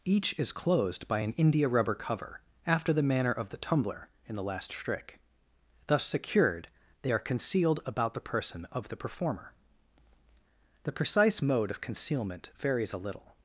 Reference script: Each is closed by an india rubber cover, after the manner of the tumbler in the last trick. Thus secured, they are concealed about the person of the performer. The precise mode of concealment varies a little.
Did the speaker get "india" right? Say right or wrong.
right